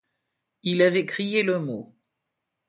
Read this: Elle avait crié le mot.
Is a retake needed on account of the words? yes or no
yes